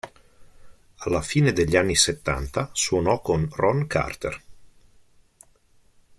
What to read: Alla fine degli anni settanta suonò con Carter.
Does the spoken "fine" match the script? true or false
true